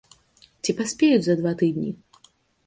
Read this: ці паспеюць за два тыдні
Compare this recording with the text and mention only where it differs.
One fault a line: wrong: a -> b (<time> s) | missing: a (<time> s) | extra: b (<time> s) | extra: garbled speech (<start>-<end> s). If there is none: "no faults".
no faults